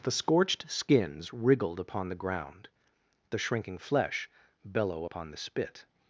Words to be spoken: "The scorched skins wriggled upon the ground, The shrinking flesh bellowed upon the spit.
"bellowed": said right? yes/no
no